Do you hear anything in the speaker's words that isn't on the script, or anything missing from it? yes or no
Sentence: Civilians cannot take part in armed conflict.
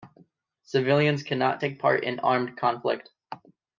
no